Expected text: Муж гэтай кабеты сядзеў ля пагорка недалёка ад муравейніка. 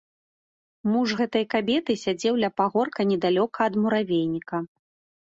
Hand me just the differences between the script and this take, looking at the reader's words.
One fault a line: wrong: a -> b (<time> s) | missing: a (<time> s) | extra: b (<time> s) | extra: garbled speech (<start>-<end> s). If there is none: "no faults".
no faults